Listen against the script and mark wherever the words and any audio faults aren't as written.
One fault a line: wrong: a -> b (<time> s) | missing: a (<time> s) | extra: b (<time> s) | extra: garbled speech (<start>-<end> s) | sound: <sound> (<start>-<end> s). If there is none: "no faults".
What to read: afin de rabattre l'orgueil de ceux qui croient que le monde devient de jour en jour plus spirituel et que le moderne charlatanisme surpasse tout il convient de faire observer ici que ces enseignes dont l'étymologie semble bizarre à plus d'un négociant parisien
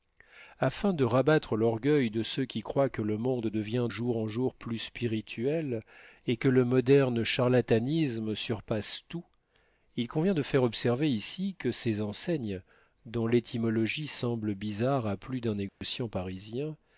missing: de (3.9 s)
sound: dropout (15.7-15.8 s)